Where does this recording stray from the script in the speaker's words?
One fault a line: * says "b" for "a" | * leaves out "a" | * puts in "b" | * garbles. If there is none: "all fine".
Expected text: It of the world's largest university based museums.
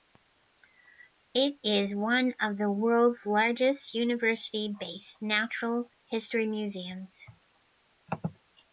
* puts in "is one"
* puts in "natural history"